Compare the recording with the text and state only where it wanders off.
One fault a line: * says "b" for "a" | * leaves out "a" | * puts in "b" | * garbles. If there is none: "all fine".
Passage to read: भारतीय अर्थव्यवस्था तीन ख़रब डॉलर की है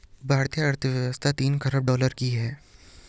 all fine